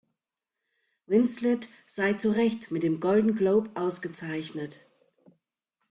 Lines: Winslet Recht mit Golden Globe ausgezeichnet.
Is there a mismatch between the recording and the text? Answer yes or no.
yes